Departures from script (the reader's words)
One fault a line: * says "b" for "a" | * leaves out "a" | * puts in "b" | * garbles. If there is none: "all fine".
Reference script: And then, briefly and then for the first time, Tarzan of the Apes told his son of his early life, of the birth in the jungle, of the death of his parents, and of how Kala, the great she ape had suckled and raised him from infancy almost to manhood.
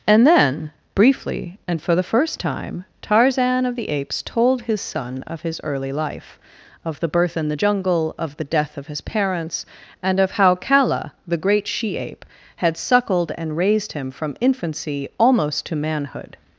* leaves out "then"